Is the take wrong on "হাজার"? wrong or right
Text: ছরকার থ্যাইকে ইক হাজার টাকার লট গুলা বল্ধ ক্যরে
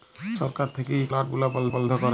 wrong